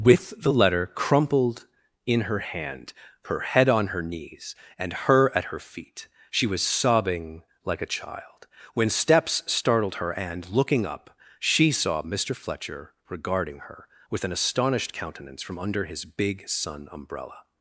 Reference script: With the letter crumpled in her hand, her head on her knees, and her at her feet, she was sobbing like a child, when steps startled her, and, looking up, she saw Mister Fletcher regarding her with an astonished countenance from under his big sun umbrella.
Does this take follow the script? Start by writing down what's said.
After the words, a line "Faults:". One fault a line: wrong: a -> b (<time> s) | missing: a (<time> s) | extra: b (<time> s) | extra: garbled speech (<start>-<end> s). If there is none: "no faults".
With the letter crumpled in her hand, her head on her knees, and her at her feet, she was sobbing like a child, when steps startled her, and, looking up, she saw Mister Fletcher regarding her with an astonished countenance from under his big sun umbrella.
Faults:
no faults